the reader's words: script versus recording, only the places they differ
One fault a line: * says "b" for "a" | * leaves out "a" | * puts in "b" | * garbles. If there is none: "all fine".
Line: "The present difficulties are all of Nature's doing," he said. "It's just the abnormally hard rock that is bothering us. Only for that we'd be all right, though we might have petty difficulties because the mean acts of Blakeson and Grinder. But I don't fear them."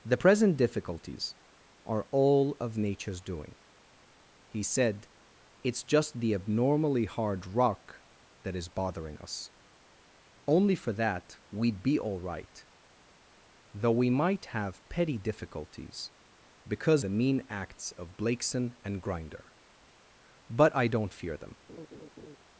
all fine